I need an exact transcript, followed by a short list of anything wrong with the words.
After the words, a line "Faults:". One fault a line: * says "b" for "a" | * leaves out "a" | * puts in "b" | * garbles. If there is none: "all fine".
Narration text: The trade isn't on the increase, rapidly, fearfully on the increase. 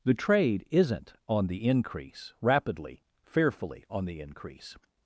The trade isn't on the increase, rapidly, fearfully on the increase.
Faults:
all fine